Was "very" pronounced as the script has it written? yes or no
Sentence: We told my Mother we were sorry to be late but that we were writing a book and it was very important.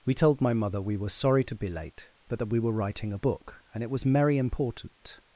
no